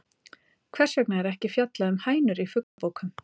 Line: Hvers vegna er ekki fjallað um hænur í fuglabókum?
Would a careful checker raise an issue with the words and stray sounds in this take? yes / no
yes